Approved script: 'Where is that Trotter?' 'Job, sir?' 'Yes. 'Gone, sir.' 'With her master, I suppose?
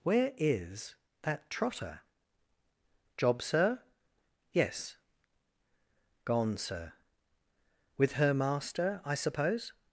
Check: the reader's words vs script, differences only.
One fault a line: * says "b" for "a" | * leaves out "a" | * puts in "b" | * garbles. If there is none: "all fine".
all fine